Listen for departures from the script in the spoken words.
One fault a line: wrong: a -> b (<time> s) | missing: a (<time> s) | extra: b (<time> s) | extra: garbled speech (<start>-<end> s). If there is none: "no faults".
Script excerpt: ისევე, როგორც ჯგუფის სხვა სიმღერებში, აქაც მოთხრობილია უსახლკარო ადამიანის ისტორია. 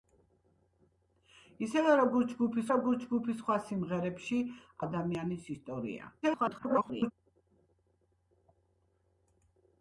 extra: როგორც ჯგუფის (2.7 s)
missing: აქაც მოთხრობილია უსახლკარო (4.4 s)
extra: garbled speech (6.2-7.1 s)